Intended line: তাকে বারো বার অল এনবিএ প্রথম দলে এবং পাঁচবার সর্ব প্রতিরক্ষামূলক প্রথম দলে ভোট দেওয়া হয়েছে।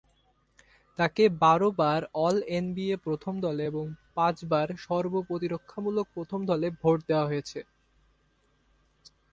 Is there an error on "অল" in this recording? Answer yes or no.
no